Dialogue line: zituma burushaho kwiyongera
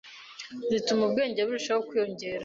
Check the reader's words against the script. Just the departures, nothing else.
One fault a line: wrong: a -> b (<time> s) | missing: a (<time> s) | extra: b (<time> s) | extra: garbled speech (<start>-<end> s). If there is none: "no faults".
extra: ubwenge (1.1 s)